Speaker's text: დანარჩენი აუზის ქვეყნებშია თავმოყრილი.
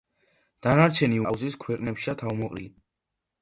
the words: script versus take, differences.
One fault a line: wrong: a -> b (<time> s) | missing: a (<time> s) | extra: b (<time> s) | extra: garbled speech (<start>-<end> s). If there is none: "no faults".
no faults